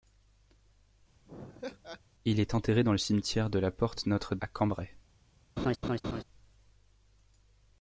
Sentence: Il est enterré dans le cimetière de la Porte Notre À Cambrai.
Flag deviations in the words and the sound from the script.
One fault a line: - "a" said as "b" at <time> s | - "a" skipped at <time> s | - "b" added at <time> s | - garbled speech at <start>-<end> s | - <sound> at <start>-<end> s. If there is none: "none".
- laugh at 1.3-2.0 s
- laugh at 5.6-6.2 s